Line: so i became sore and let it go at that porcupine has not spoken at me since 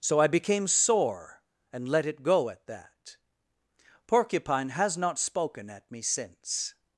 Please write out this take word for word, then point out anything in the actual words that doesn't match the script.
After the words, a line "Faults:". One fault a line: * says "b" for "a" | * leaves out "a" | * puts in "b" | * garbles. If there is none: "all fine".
so i became sore and let it go at that porcupine has not spoken at me since
Faults:
all fine